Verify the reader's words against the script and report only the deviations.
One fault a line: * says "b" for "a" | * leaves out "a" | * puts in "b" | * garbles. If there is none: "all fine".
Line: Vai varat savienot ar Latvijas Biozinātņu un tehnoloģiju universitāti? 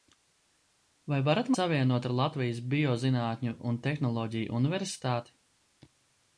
all fine